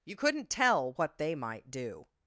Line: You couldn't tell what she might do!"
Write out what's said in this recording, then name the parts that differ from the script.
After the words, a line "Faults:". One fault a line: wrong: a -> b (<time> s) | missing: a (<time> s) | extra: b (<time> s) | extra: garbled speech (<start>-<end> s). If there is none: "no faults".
You couldn't tell what they might do!"
Faults:
wrong: she -> they (1.2 s)